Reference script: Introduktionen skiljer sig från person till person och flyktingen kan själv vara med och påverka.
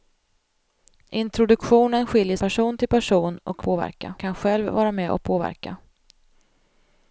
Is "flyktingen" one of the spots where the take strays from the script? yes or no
yes